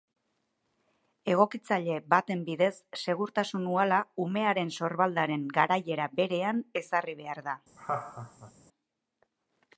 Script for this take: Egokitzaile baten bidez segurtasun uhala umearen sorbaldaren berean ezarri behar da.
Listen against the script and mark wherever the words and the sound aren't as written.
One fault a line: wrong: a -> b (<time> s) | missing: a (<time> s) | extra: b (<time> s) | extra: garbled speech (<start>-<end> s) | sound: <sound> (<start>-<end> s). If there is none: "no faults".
extra: garaiera (5.6 s)
sound: laugh (7.8-8.5 s)